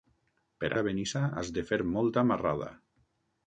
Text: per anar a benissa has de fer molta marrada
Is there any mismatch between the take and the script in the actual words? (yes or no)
yes